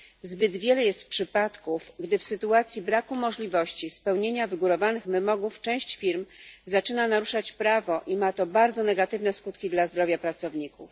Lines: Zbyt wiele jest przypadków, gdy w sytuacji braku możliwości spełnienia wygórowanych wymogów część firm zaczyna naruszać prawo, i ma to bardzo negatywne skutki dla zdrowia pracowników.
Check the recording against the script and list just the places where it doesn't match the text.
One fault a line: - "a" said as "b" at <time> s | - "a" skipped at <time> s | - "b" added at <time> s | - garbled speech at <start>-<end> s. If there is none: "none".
none